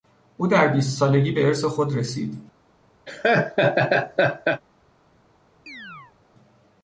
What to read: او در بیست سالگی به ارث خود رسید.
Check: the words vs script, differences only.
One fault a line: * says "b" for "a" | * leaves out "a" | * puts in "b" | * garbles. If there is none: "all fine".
all fine